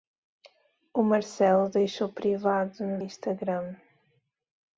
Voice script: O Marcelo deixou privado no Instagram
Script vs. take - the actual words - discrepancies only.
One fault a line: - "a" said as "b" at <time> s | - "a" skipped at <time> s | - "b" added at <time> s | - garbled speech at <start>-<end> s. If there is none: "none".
none